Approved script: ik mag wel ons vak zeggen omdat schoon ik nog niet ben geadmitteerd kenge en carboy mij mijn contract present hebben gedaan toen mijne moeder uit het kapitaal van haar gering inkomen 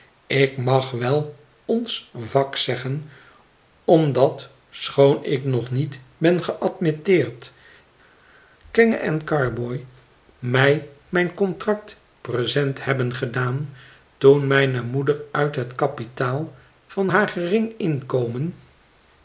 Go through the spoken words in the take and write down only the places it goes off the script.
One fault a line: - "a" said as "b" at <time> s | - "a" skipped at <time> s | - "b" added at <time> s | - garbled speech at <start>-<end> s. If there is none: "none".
none